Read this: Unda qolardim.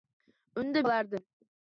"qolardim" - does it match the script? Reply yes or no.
yes